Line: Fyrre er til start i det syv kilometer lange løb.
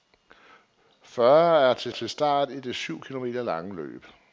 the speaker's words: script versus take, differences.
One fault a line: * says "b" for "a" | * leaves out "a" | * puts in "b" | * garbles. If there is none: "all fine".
* puts in "til"